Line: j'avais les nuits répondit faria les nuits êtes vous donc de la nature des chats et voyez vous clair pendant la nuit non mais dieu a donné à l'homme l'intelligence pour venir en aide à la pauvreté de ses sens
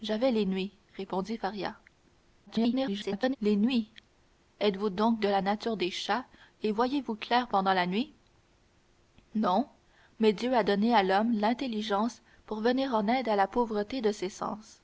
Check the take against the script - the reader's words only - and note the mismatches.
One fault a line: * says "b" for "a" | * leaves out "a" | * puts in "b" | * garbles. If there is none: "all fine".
* garbles